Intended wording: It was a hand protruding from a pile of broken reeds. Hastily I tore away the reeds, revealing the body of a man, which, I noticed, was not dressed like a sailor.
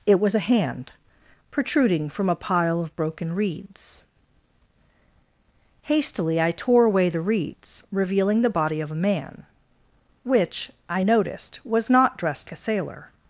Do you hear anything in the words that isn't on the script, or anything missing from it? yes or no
yes